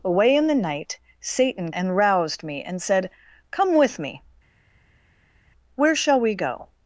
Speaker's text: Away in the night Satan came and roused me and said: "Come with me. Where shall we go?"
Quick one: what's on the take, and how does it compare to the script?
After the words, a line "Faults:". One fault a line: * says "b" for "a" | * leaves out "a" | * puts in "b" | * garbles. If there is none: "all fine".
Away in the night Satan and roused me and said: "Come with me. Where shall we go?"
Faults:
* leaves out "came"